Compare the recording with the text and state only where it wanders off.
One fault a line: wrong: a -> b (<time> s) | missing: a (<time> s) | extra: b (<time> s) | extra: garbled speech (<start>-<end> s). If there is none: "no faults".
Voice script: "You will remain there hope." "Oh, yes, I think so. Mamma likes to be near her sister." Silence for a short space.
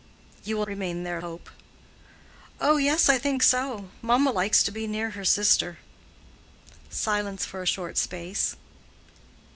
no faults